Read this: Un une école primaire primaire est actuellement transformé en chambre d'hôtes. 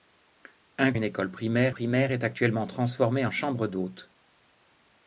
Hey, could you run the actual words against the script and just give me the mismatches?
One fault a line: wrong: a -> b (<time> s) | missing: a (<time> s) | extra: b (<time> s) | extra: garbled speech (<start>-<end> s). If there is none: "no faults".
no faults